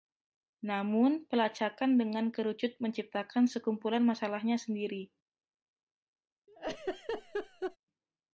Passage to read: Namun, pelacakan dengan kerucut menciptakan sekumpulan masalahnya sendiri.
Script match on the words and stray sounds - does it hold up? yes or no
no